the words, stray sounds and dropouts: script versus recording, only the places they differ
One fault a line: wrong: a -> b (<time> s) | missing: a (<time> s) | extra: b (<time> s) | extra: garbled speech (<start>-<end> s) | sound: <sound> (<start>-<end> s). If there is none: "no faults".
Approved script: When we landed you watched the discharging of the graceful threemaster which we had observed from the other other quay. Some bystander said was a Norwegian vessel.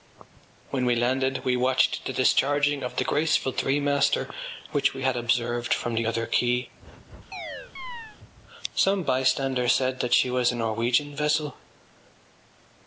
wrong: you -> we (1.4 s)
missing: other (6.3 s)
sound: chirp (7.3-8.2 s)
extra: that she (10.0 s)